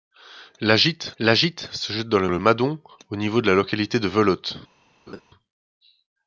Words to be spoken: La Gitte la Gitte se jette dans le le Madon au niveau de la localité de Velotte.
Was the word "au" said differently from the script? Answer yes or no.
no